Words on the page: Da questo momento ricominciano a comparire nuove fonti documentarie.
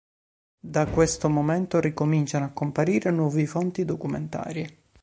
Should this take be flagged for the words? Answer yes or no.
no